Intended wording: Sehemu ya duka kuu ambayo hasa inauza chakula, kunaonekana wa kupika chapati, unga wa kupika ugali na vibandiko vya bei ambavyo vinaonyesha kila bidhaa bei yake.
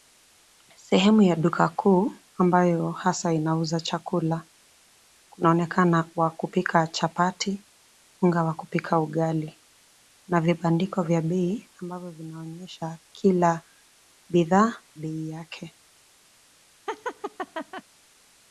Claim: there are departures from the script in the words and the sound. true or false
true